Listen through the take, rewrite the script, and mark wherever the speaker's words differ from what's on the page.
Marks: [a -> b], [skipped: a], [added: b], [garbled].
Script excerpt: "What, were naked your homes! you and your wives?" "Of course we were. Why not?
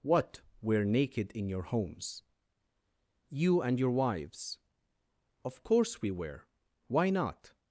"What, were naked [added: in] your homes! you and your wives?" "Of course we were. Why not?